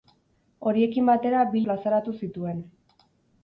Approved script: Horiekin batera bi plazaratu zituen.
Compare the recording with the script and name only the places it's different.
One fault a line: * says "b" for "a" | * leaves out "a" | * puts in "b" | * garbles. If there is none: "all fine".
all fine